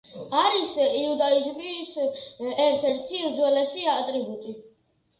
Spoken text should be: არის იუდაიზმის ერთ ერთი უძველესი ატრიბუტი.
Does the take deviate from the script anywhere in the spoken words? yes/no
no